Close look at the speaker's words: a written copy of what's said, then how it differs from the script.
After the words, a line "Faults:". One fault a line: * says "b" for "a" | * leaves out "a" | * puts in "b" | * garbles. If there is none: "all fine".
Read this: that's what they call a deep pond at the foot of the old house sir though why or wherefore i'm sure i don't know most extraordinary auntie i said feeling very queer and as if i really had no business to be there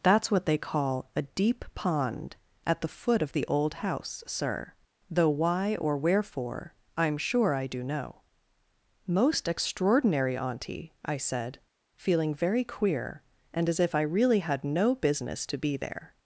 that's what they call a deep pond at the foot of the old house sir though why or wherefore i'm sure i do know most extraordinary auntie i said feeling very queer and as if i really had no business to be there
Faults:
* says "do" for "don't"